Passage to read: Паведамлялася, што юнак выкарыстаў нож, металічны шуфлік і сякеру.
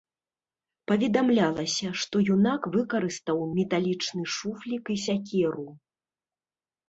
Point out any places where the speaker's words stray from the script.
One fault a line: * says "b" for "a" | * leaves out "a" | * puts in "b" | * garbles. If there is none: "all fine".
* leaves out "нож"